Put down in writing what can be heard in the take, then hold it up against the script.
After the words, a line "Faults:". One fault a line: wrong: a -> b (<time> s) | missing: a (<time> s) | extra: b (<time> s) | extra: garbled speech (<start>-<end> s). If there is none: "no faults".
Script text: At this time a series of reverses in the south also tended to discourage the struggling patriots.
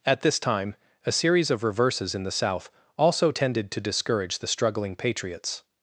At this time a series of reverses in the south also tended to discourage the struggling patriots.
Faults:
no faults